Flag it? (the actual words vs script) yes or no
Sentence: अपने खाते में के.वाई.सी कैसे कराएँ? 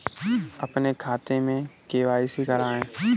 yes